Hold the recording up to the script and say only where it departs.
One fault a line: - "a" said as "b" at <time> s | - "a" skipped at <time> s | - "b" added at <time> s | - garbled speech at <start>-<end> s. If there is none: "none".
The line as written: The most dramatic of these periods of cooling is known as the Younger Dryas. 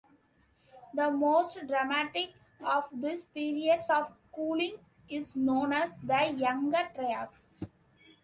none